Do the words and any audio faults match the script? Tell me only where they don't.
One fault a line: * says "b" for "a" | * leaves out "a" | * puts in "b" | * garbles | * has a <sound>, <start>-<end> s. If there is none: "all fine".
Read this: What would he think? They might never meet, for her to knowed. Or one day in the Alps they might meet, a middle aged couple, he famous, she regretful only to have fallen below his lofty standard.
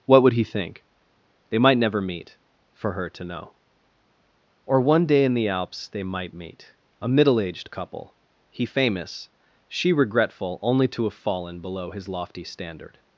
* says "know" for "knowed"